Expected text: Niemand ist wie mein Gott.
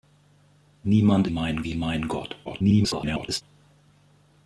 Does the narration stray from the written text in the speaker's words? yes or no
yes